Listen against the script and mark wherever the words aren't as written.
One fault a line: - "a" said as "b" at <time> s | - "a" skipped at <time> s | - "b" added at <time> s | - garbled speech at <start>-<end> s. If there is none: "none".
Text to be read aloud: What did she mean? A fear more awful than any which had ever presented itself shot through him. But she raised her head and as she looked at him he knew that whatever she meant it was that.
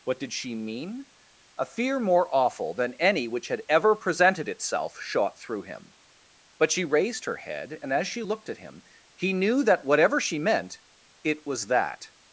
none